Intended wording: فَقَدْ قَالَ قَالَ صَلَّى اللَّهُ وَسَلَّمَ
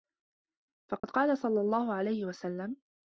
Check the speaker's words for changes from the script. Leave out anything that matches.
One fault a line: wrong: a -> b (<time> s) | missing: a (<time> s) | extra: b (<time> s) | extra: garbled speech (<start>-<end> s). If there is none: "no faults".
missing: قَالَ (1.4 s)
extra: عَلَيْهِ (1.9 s)